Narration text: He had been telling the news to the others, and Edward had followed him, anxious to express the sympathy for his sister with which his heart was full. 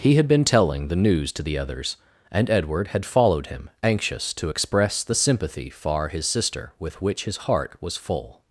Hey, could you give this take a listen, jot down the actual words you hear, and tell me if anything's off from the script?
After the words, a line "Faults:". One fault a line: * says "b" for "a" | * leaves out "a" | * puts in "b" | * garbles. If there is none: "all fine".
He had been telling the news to the others, and Edward had followed him, anxious to express the sympathy far his sister with which his heart was full.
Faults:
* says "far" for "for"